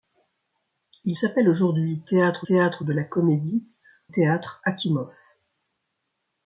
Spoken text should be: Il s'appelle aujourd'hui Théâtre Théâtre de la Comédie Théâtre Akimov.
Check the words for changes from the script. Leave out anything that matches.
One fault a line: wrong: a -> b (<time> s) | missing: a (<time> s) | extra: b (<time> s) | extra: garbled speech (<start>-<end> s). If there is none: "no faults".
no faults